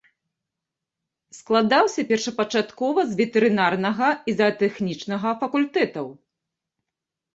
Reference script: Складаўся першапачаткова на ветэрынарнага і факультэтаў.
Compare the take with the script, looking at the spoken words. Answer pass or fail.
fail